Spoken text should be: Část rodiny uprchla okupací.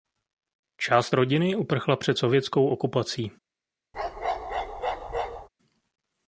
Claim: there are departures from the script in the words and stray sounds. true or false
true